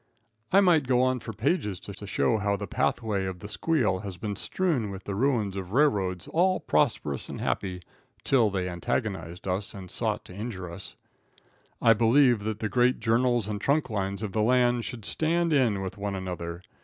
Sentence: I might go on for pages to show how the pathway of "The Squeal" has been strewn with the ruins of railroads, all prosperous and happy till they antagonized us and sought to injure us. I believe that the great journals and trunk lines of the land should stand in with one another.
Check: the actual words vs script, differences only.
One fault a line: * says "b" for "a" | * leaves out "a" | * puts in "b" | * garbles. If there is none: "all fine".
* puts in "to"